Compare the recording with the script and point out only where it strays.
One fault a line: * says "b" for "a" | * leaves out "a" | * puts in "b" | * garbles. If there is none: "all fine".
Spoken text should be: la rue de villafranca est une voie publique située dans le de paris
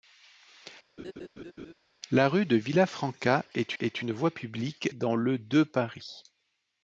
* puts in "est"
* leaves out "située"